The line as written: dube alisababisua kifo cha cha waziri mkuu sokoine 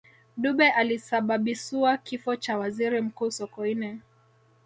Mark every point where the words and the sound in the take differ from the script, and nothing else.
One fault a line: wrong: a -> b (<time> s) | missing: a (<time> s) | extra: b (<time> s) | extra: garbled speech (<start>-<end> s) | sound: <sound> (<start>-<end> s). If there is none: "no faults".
missing: cha (2.6 s)